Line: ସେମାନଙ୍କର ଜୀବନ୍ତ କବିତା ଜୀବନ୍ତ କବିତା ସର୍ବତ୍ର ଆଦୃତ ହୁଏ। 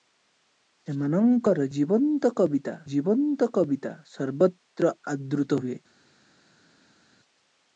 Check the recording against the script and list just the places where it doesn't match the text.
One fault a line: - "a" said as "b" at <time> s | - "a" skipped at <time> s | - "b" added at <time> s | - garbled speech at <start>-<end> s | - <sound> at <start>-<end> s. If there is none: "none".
none